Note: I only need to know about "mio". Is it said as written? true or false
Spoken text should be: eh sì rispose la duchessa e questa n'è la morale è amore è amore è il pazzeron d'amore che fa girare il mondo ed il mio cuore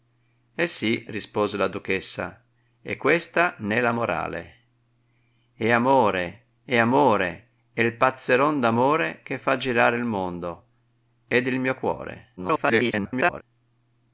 true